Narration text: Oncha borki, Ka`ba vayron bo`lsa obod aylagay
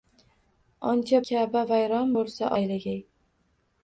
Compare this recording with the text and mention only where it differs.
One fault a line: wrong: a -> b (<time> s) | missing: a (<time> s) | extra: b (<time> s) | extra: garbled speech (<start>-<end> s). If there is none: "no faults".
missing: borki (1.2 s)
missing: obod (2.5 s)